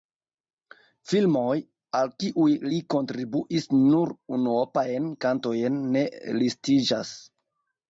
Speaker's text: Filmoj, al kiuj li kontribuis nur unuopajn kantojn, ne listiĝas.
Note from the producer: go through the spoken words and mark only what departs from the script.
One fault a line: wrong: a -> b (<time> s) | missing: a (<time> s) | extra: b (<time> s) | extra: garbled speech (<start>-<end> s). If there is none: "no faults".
no faults